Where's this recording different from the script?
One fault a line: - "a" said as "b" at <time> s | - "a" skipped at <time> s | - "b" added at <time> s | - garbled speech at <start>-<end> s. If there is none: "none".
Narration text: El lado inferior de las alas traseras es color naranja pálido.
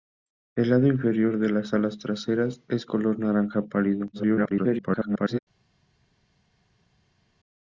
- garbled speech at 4.1-5.4 s